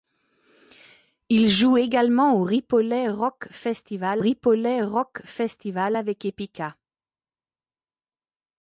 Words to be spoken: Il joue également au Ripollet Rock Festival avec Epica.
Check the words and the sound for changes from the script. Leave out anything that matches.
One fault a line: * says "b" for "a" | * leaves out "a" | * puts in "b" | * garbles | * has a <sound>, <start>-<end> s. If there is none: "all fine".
* puts in "Ripollet Rock Festival"